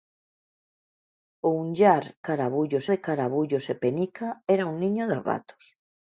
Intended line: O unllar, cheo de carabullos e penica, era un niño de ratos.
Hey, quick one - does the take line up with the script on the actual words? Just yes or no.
no